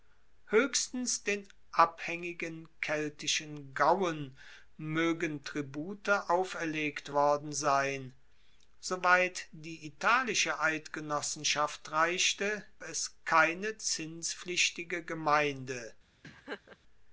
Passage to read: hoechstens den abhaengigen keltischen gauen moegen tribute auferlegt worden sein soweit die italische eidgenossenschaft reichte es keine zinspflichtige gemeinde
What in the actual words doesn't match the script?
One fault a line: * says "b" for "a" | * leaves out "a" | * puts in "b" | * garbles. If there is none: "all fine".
all fine